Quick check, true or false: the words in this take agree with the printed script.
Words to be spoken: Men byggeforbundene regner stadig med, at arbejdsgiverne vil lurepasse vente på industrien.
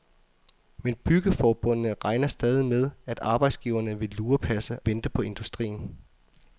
true